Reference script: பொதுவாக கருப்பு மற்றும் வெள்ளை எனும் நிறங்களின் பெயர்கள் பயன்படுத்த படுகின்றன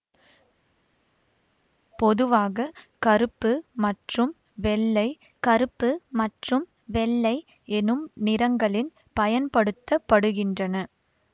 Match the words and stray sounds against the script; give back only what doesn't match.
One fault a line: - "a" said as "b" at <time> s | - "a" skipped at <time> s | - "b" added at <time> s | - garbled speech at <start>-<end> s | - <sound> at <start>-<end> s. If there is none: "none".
- "கருப்பு மற்றும் வெள்ளை" added at 5.4 s
- "பெயர்கள்" skipped at 8.9 s